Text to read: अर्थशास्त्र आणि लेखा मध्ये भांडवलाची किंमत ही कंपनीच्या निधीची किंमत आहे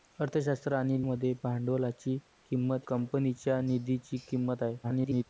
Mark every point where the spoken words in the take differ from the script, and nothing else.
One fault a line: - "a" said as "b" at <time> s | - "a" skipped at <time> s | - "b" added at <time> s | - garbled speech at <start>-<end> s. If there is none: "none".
- "लेखा" skipped at 1.0 s
- "ही" skipped at 2.9 s
- garbled speech at 4.8-5.2 s